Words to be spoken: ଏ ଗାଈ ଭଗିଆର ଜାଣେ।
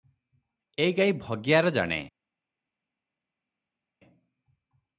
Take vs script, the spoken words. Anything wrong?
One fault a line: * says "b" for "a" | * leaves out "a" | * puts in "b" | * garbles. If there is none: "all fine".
all fine